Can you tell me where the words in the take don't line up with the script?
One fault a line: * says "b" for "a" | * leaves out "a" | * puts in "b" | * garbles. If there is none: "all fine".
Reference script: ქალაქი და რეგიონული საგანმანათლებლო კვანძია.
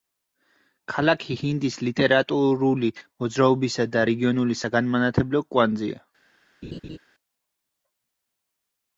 * puts in "ჰინდის ლიტერატურული მოძრაობისა"